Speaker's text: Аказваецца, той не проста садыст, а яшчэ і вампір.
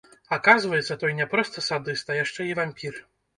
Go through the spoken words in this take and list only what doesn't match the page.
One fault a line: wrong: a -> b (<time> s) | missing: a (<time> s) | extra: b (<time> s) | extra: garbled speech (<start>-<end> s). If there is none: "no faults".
no faults